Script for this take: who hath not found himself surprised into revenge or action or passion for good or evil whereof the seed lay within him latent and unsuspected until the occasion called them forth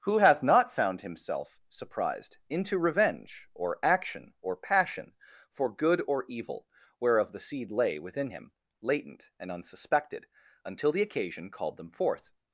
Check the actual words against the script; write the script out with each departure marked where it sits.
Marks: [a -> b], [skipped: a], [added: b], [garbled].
who hath not found himself surprised into revenge or action or passion for good or evil whereof the seed lay within him latent and unsuspected until the occasion called them forth